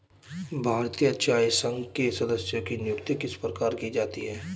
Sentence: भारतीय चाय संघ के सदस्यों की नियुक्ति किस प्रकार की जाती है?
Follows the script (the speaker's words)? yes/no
yes